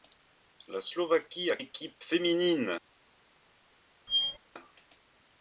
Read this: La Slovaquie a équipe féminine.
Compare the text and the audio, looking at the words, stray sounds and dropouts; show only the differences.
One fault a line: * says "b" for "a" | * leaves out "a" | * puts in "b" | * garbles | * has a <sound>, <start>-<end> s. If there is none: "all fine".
* has a squeak, 4.1-4.4 s